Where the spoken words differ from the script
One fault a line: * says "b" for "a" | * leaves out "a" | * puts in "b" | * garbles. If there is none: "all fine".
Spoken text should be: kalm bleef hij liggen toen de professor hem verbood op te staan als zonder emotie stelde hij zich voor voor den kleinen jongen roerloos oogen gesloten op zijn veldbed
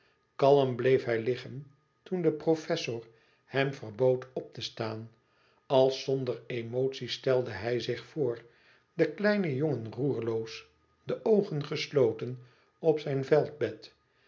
* leaves out "voor"
* puts in "de"